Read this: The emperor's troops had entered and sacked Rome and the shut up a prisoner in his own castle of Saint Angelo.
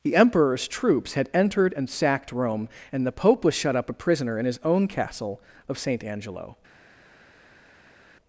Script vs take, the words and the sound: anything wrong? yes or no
yes